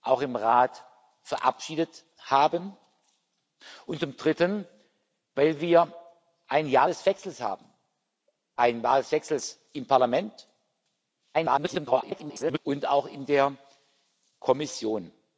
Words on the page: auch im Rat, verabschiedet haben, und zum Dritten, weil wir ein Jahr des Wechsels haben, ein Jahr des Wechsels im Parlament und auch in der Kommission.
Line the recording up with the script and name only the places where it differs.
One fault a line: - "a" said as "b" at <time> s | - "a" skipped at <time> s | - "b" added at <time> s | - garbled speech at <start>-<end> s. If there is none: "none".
- garbled speech at 11.3-12.6 s